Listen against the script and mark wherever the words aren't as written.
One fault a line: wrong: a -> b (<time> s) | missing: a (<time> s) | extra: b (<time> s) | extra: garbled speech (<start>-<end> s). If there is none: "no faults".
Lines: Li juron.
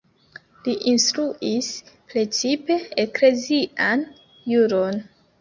extra: instruis precipe eklezian (0.9 s)